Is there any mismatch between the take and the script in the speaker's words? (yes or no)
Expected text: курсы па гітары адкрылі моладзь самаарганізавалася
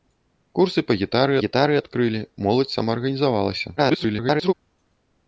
yes